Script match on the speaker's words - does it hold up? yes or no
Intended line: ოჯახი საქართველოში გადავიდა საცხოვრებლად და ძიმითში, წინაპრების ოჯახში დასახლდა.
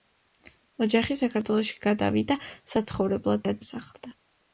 no